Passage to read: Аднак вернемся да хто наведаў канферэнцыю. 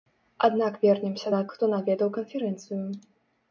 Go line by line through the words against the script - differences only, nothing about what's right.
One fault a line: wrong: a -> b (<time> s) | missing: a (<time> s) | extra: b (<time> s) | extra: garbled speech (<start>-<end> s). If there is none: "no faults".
no faults